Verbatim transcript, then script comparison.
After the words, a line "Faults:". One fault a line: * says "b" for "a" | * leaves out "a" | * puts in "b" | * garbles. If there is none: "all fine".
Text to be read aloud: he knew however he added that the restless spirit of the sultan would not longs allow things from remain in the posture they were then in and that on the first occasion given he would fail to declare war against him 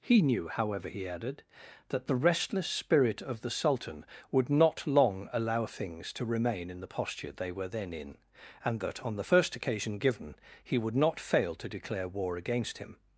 he knew however he added that the restless spirit of the sultan would not long allow things to remain in the posture they were then in and that on the first occasion given he would not fail to declare war against him
Faults:
* says "long" for "longs"
* says "to" for "from"
* puts in "not"